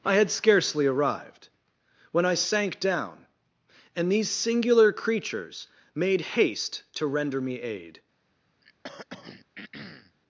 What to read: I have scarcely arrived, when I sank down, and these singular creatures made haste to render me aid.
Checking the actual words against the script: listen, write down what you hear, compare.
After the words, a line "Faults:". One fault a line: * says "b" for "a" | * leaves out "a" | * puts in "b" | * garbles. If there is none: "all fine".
I had scarcely arrived, when I sank down, and these singular creatures made haste to render me aid.
Faults:
* says "had" for "have"